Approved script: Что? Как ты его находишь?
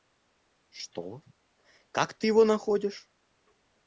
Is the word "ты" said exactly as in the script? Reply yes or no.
yes